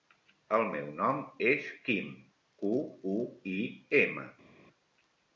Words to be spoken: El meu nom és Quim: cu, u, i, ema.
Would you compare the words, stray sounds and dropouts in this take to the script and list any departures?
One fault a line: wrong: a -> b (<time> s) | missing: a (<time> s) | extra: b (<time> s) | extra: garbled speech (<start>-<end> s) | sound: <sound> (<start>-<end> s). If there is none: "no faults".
no faults